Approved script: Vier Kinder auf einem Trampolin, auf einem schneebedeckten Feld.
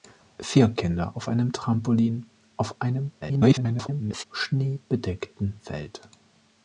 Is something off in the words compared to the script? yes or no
yes